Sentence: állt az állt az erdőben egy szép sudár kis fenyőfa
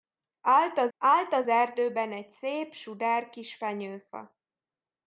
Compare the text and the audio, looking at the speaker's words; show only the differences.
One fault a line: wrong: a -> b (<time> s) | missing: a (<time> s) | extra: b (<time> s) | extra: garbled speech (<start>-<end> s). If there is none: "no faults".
no faults